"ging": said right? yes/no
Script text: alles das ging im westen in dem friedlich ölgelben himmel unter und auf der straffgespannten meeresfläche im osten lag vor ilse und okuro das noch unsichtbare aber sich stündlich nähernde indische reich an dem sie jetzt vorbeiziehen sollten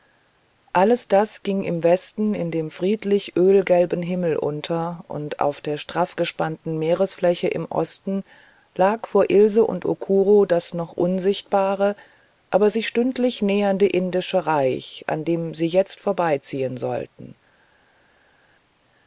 yes